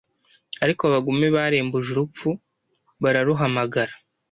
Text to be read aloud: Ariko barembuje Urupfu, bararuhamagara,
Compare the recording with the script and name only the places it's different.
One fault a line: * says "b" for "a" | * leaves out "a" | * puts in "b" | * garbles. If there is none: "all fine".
* puts in "abagome"